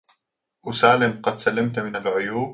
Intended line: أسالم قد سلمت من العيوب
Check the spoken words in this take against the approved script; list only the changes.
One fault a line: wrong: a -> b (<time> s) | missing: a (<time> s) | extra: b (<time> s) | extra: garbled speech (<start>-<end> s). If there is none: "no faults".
no faults